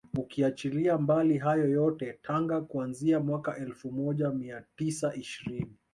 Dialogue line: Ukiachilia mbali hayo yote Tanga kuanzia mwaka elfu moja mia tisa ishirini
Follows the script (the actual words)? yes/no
yes